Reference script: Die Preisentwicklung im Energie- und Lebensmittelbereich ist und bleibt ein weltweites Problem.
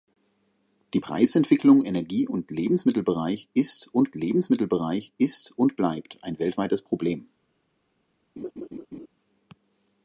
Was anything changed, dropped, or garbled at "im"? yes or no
yes